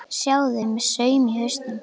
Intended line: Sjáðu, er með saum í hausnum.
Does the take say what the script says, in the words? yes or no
yes